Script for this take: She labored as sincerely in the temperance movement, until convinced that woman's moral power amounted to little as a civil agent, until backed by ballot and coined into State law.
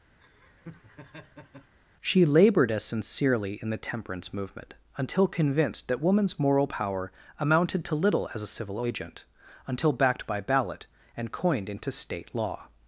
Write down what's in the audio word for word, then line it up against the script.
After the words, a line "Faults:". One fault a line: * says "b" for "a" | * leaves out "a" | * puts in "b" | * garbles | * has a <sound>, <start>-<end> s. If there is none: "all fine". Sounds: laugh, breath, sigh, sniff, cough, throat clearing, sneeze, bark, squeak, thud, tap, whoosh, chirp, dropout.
She labored as sincerely in the temperance movement, until convinced that woman's moral power amounted to little as a civil agent, until backed by ballot and coined into State law.
Faults:
* has a laugh, 0.2-1.7 s